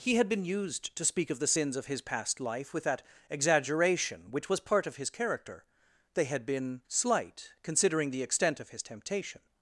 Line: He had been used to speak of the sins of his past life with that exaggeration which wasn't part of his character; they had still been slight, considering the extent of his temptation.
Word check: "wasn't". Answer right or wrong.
wrong